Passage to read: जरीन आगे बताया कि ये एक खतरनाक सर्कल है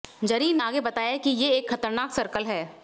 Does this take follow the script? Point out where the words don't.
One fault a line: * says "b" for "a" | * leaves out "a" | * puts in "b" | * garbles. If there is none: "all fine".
all fine